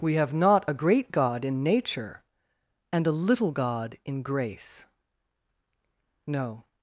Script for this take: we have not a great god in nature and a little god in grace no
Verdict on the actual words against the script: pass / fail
pass